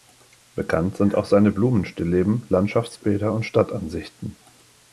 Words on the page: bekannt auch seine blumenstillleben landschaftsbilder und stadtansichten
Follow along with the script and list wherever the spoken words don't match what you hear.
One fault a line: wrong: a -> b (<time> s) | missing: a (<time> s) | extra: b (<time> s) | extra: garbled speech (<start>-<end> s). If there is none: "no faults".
extra: sind (1.0 s)